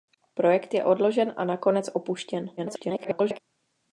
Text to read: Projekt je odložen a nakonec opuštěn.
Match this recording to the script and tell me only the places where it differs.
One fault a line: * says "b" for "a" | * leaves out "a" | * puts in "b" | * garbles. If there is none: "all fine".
* garbles